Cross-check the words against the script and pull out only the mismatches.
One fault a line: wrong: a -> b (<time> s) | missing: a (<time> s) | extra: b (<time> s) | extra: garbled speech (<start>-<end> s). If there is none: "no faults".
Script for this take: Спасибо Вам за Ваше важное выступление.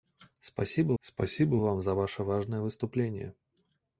extra: спасибо (1.0 s)